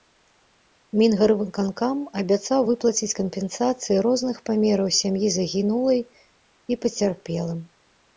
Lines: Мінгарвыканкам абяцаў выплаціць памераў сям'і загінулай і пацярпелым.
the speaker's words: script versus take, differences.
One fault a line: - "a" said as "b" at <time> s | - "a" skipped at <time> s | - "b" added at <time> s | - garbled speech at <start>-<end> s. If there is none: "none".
- "кампенсацыі розных" added at 3.2 s